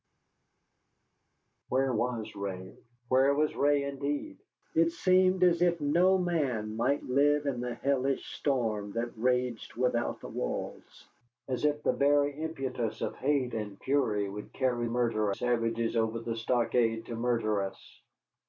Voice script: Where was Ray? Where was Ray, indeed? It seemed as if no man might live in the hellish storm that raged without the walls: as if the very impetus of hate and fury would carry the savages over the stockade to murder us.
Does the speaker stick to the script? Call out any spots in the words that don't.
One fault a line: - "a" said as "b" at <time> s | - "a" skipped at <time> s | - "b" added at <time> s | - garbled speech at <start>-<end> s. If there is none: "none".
- "the" said as "murder" at 14.8 s